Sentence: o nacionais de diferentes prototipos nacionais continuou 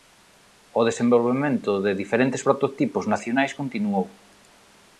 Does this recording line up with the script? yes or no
no